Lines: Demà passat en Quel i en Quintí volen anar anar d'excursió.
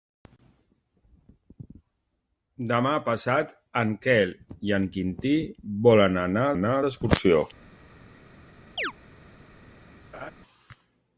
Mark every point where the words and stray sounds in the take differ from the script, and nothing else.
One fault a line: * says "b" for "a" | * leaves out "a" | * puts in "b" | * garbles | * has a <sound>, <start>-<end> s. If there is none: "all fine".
* has a chirp, 8.8-8.9 s
* has a laugh, 10.1-10.3 s